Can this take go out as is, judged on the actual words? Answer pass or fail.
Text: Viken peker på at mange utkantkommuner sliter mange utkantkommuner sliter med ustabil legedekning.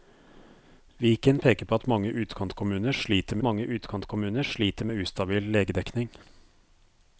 pass